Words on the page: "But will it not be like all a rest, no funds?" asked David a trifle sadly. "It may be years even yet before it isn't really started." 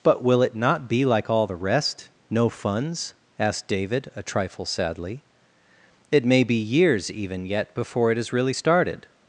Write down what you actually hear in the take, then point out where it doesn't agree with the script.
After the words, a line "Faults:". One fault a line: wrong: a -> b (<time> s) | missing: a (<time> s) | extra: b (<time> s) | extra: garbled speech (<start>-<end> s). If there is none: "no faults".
"But will it not be like all the rest, no funds?" asked David a trifle sadly. "It may be years even yet before it is really started."
Faults:
wrong: a -> the (1.4 s)
wrong: isn't -> is (8.2 s)